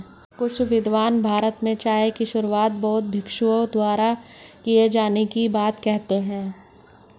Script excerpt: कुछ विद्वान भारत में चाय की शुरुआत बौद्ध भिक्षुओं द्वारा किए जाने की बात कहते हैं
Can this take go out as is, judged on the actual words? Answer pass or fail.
pass